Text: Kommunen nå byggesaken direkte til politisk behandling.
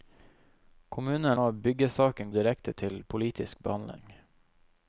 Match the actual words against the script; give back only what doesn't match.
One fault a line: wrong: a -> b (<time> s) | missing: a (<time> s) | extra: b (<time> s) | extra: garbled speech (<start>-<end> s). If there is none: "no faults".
no faults